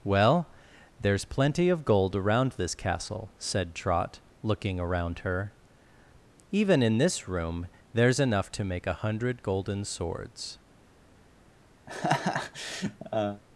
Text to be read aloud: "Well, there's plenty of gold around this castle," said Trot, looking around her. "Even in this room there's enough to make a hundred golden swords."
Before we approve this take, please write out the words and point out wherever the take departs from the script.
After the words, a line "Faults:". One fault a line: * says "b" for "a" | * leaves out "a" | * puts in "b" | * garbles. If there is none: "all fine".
"Well, there's plenty of gold around this castle," said Trot, looking around her. "Even in this room there's enough to make a hundred golden swords."
Faults:
all fine